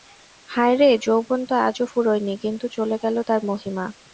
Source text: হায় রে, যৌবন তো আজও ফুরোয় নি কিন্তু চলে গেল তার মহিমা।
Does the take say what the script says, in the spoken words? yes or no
yes